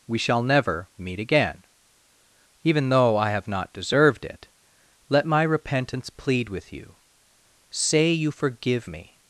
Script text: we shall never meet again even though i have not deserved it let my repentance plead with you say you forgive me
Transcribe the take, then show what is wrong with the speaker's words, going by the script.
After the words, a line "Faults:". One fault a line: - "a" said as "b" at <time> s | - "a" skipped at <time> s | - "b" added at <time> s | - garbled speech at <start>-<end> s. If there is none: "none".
we shall never meet again even though i have not deserved it let my repentance plead with you say you forgive me
Faults:
none